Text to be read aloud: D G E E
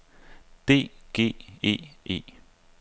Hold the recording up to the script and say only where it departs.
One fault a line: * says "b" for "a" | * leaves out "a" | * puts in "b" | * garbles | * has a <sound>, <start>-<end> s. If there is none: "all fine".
all fine